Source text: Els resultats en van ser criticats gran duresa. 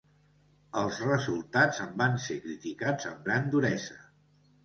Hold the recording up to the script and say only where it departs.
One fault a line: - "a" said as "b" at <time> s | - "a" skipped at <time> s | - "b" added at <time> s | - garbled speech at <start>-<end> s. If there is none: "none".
- "amb" added at 3.1 s